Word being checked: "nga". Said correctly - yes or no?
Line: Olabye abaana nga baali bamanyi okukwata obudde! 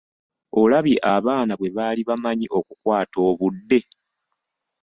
no